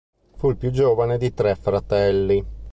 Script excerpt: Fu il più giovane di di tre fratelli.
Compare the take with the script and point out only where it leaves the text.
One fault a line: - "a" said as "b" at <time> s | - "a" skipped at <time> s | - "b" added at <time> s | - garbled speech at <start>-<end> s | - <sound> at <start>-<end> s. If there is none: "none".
- "di" skipped at 1.3 s